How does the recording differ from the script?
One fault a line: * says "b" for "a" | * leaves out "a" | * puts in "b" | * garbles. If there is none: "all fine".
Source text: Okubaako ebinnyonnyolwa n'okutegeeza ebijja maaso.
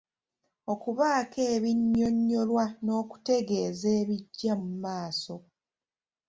* puts in "mu"